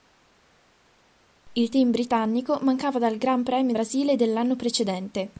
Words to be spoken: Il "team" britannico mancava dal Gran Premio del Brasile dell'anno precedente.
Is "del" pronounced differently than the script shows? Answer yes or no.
yes